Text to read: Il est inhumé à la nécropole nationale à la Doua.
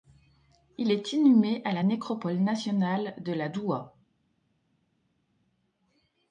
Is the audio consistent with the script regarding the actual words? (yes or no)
no